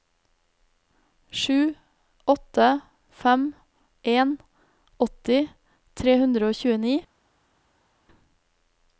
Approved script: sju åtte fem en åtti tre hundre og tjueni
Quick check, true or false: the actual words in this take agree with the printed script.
true